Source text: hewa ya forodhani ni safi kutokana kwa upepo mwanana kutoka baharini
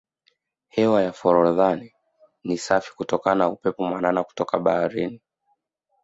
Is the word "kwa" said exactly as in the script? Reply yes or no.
no